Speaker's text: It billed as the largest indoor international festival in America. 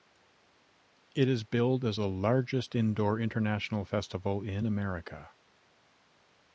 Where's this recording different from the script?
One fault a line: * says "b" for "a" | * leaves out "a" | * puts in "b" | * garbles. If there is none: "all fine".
* puts in "is"